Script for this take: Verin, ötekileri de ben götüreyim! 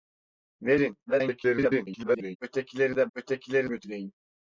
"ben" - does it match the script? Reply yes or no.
no